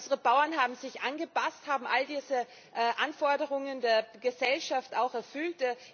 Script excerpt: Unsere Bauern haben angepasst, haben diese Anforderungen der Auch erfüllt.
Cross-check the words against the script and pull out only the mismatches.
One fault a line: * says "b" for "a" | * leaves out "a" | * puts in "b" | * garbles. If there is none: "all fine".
* puts in "sich"
* puts in "all"
* puts in "Gesellschaft"